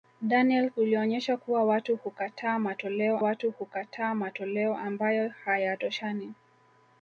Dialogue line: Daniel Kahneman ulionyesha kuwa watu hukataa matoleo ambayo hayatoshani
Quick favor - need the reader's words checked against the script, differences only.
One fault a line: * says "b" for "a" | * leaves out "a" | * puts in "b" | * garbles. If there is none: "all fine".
* leaves out "Kahneman"
* puts in "watu hukataa matoleo"